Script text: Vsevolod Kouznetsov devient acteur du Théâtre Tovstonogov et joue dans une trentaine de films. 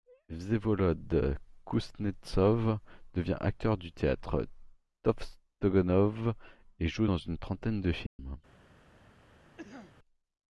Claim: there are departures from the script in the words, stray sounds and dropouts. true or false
true